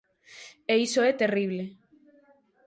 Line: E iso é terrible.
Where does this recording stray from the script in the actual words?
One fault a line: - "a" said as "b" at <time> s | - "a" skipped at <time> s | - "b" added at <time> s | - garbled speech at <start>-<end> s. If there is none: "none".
none